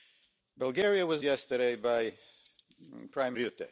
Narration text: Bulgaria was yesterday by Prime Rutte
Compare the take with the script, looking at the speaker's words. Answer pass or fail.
pass